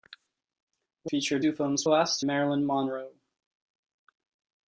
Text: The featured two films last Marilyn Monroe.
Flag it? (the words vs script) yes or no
no